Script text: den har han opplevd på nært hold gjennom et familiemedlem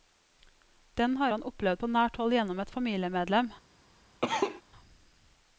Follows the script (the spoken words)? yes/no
yes